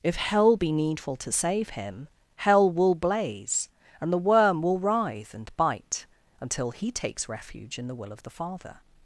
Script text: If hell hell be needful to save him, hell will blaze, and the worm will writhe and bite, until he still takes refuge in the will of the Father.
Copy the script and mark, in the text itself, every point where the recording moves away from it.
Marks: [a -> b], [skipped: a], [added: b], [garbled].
If hell [skipped: hell] be needful to save him, hell will blaze, and the worm will writhe and bite, until he [skipped: still] takes refuge in the will of the Father.